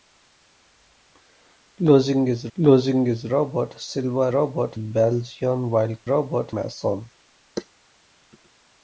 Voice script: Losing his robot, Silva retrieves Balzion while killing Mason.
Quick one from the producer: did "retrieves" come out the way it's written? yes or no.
no